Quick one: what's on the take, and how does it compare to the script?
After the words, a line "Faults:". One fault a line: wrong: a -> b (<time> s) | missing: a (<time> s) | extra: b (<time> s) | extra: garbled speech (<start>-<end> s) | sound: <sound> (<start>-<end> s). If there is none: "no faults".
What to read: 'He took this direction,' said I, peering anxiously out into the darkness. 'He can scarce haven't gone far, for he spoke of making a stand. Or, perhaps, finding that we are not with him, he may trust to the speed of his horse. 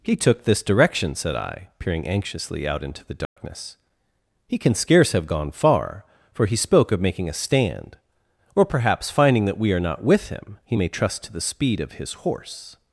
'He took this direction,' said I, peering anxiously out into the darkness. 'He can scarce have gone far, for he spoke of making a stand. Or, perhaps, finding that we are not with him, he may trust to the speed of his horse.
Faults:
sound: dropout (3.2-3.4 s)
wrong: haven't -> have (5.1 s)